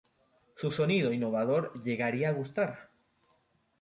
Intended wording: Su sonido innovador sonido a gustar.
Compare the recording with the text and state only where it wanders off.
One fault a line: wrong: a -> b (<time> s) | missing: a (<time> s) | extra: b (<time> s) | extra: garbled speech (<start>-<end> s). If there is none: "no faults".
wrong: sonido -> llegaría (1.8 s)